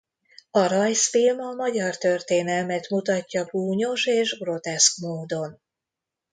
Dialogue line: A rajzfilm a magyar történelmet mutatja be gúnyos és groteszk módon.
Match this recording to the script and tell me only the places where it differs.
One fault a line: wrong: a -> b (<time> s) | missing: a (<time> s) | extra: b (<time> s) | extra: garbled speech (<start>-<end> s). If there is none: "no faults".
missing: be (3.5 s)